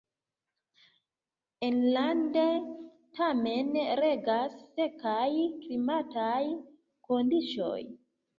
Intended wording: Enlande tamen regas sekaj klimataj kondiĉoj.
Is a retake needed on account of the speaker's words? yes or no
no